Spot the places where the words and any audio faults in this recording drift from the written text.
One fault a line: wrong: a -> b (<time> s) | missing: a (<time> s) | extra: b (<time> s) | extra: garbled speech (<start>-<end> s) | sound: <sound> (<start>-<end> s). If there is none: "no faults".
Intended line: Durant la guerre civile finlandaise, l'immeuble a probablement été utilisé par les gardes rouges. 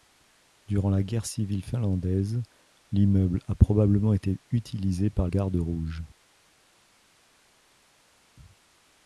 missing: les (5.3 s)